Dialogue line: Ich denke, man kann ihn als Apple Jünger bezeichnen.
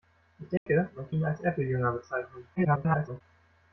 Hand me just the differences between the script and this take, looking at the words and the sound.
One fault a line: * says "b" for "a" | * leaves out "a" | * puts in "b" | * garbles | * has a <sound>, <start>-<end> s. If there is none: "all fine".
* has a dropout, 0.6-0.7 s
* leaves out "kann"
* garbles